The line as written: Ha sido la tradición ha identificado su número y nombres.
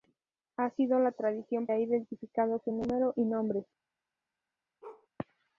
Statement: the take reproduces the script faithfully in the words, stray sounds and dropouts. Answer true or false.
false